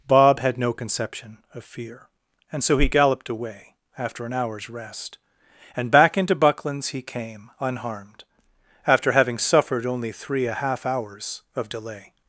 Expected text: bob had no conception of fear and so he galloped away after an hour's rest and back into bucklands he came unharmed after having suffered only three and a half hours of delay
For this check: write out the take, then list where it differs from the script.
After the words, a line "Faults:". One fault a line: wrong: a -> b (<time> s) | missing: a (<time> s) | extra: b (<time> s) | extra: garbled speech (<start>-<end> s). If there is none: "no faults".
bob had no conception of fear and so he galloped away after an hour's rest and back into bucklands he came unharmed after having suffered only three a half hours of delay
Faults:
missing: and (10.5 s)